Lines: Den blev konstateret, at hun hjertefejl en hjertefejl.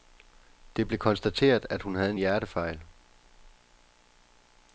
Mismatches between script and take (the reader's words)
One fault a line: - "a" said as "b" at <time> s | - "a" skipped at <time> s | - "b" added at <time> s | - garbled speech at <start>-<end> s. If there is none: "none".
- "Den" said as "Det" at 0.8 s
- "hjertefejl" said as "havde" at 1.9 s